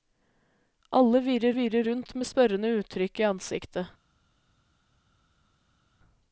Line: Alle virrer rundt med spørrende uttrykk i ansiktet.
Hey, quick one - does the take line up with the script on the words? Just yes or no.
no